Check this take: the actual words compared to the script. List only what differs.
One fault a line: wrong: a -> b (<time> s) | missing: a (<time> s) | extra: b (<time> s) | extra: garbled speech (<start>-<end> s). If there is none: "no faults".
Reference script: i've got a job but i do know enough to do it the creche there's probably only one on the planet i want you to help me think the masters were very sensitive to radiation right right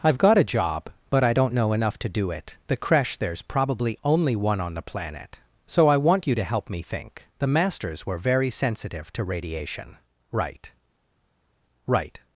wrong: do -> don't (1.3 s)
extra: so (5.7 s)